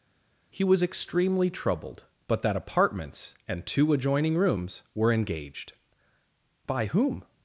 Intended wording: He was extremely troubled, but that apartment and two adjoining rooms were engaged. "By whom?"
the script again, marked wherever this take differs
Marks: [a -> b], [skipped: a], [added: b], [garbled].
He was extremely troubled, but that [apartment -> apartments] and two adjoining rooms were engaged. "By whom?"